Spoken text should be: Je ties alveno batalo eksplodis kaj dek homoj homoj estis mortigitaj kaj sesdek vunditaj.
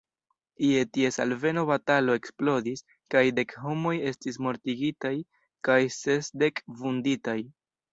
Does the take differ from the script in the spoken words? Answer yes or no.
yes